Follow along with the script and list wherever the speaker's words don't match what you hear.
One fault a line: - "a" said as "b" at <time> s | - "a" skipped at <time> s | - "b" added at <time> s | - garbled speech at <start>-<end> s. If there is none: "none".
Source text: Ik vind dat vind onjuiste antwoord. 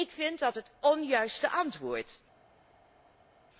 - "vind" said as "het" at 0.5 s